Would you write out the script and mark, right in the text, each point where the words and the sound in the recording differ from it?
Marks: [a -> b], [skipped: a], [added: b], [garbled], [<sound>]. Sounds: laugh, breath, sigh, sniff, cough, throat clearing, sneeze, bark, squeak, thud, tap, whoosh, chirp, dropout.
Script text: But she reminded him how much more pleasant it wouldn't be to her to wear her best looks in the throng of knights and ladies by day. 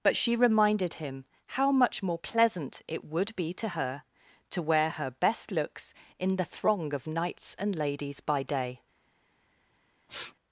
But she reminded him how much more pleasant it [wouldn't -> would] be to her to wear her best looks in the throng of knights and ladies by day. [sniff]